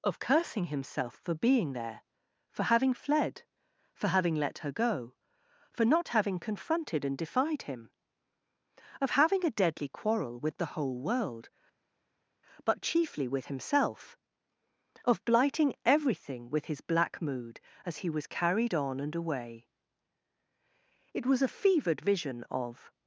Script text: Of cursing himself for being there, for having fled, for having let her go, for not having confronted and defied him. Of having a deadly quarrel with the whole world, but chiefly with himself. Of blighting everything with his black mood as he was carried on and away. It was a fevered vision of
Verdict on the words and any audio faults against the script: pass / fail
pass